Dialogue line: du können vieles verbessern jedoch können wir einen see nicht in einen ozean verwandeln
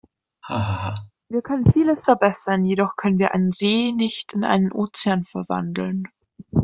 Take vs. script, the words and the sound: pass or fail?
fail